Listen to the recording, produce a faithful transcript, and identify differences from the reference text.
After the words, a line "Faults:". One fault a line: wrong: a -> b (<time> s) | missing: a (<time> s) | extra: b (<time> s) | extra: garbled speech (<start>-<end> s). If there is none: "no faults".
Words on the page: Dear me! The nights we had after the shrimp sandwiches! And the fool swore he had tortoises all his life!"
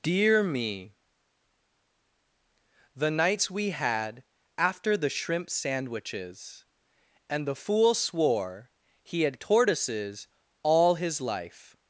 Dear me! The nights we had after the shrimp sandwiches! And the fool swore he had tortoises all his life!"
Faults:
no faults